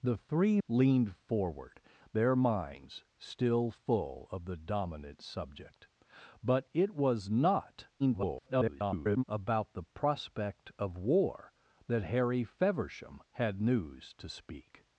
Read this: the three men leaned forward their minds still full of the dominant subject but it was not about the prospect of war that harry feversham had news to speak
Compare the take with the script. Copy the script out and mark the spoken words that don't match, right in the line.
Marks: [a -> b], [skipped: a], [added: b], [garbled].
the three [skipped: men] leaned forward their minds still full of the dominant subject but it was not [garbled] about the prospect of war that harry feversham had news to speak